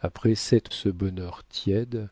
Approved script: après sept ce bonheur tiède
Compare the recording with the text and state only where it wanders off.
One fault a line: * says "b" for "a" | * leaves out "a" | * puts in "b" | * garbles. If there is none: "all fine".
all fine